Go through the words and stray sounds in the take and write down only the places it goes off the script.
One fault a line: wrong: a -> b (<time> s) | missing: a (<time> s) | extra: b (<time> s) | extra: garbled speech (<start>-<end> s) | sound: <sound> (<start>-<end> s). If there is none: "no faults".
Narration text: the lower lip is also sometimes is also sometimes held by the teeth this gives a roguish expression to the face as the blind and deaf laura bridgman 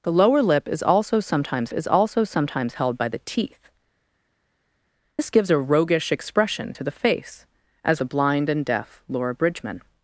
no faults